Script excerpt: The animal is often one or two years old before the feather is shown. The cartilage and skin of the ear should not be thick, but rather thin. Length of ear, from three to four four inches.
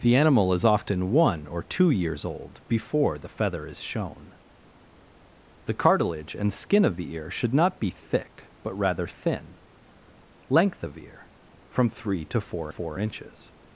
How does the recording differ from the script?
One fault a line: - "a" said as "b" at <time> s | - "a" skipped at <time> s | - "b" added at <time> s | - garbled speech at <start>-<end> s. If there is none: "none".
none